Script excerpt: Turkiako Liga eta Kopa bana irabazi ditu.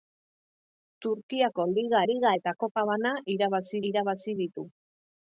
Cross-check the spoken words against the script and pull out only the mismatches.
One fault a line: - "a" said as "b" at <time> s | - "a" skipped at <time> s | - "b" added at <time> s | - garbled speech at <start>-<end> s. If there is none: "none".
- "Liga" added at 2.1 s
- "irabazi" added at 3.9 s